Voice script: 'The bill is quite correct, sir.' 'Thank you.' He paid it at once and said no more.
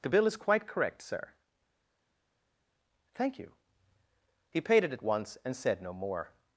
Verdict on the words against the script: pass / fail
pass